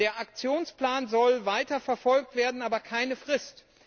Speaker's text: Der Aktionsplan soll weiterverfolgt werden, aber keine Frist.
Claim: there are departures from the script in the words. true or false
false